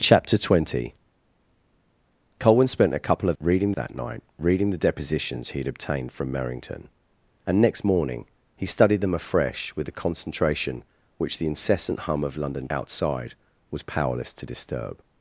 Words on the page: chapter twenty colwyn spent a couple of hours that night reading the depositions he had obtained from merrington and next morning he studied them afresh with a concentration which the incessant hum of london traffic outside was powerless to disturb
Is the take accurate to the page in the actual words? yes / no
no